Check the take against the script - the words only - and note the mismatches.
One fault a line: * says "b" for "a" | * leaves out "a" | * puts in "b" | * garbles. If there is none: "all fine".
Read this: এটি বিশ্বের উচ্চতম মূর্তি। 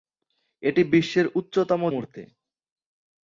all fine